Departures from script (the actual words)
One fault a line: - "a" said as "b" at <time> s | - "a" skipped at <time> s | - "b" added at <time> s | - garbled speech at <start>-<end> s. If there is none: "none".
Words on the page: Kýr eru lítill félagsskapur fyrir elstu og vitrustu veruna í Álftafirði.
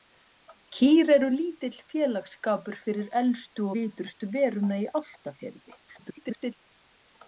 - "og" skipped at 3.7 s
- garbled speech at 5.9-6.5 s